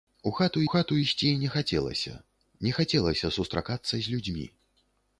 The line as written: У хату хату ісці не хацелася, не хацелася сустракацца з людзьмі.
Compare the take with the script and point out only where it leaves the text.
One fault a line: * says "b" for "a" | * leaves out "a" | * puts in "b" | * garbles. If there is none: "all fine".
all fine